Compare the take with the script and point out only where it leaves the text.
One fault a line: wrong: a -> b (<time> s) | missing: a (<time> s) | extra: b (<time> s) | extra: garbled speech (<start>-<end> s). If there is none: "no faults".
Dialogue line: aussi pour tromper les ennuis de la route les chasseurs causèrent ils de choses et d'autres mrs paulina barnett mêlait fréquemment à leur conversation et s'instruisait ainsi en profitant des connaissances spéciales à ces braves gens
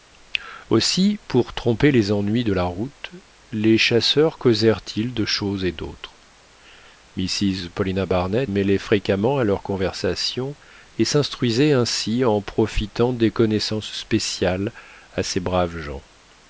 no faults